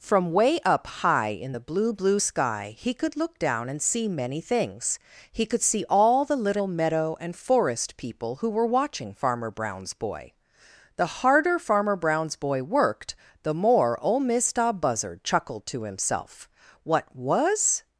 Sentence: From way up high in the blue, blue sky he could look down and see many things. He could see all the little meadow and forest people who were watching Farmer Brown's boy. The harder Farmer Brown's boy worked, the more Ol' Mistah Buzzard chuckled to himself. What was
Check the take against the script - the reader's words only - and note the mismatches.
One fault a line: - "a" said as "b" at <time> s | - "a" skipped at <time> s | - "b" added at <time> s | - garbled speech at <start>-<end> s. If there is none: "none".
none